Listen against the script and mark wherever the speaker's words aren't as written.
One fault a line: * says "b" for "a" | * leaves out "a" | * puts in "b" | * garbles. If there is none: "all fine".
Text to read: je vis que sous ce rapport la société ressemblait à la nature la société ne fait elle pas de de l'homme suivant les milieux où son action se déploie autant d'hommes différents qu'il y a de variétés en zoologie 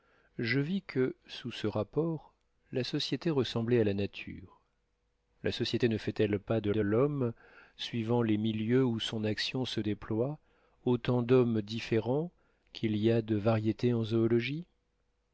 all fine